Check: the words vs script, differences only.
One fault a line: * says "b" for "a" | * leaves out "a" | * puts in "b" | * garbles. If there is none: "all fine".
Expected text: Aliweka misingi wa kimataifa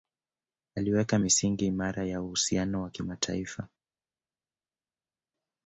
* puts in "imara ya uhusiano"